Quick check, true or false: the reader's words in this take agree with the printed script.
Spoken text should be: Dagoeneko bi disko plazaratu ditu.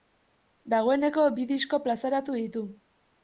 true